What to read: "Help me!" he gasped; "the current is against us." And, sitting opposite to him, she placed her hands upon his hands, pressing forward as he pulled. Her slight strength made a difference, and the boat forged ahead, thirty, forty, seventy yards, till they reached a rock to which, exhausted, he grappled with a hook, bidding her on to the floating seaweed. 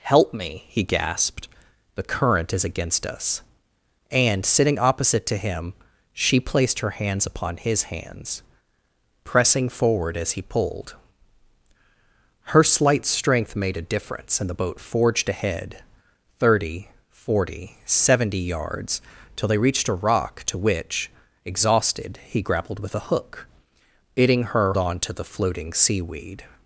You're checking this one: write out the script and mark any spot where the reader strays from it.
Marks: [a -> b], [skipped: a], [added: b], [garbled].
"Help me!" he gasped; "the current is against us." And, sitting opposite to him, she placed her hands upon his hands, pressing forward as he pulled. Her slight strength made a difference, and the boat forged ahead, thirty, forty, seventy yards, till they reached a rock to which, exhausted, he grappled with a hook, bidding her on to the floating seaweed.